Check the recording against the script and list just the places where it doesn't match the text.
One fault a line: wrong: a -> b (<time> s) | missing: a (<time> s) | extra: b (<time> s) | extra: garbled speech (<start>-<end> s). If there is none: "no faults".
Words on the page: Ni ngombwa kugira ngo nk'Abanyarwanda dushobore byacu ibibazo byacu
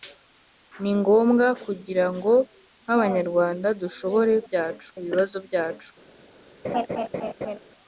no faults